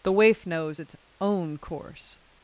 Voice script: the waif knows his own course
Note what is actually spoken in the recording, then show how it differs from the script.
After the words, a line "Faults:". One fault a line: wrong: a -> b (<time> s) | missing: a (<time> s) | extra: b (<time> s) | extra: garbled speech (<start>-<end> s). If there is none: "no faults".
the waif knows its own course
Faults:
wrong: his -> its (0.8 s)